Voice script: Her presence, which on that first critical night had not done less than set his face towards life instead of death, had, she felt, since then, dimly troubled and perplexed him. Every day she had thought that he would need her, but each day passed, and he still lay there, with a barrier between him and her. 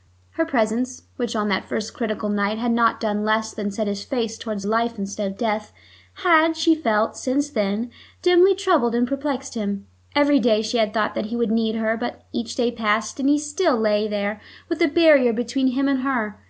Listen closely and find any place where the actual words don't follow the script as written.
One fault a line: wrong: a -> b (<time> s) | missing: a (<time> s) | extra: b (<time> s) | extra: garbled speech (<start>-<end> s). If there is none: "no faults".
no faults